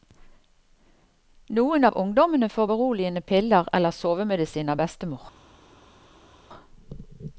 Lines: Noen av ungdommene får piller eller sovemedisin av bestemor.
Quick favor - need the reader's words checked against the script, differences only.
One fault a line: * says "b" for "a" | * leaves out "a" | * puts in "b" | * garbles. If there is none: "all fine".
* puts in "beroligende"